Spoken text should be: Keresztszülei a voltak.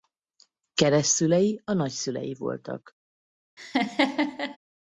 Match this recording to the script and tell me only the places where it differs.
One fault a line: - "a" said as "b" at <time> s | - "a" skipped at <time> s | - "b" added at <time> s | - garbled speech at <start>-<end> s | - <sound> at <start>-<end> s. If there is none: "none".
- "nagyszülei" added at 1.7 s
- laugh at 3.6-4.6 s